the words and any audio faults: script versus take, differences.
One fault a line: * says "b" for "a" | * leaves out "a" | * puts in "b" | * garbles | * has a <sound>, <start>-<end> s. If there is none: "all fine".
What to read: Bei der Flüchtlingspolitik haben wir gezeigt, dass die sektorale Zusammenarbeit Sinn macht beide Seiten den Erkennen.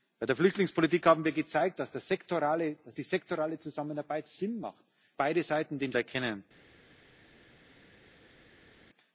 all fine